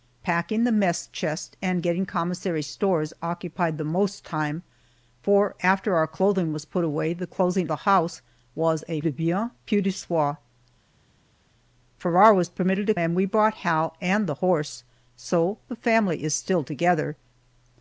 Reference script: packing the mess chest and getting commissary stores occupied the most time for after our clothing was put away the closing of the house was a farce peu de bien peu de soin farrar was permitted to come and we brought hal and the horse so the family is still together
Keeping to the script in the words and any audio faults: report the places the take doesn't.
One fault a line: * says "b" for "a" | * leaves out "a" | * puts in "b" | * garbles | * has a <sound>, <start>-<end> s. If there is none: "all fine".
* leaves out "of"
* leaves out "farce peu"
* leaves out "come"